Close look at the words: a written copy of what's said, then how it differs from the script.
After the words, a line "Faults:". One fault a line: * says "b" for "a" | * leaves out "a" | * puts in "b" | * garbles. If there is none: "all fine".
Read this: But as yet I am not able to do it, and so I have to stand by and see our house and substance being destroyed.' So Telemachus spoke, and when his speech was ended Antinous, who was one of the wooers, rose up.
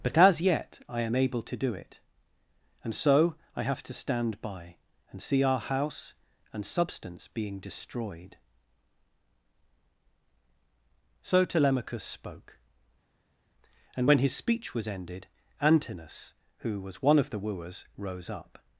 But as yet I am able to do it, and so I have to stand by and see our house and substance being destroyed.' So Telemachus spoke, and when his speech was ended Antinous, who was one of the wooers, rose up.
Faults:
* leaves out "not"